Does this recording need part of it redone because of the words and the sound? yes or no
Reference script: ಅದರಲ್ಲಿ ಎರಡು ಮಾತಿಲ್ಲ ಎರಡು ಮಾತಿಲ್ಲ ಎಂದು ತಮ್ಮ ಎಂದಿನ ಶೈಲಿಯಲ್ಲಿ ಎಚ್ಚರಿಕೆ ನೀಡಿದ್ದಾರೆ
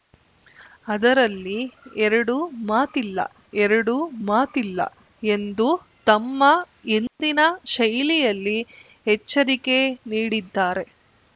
yes